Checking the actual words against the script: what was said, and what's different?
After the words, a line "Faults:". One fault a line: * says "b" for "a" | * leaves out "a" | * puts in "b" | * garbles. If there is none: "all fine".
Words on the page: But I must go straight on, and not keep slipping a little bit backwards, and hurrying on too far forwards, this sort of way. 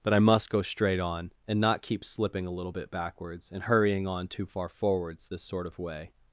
But I must go straight on, and not keep slipping a little bit backwards, and hurrying on too far forwards, this sort of way.
Faults:
all fine